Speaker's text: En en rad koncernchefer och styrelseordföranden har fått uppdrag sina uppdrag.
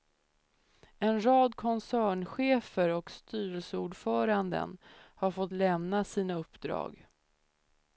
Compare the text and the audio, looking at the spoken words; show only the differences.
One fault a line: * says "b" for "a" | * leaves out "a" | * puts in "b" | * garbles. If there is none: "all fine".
* leaves out "en"
* says "lämna" for "uppdrag"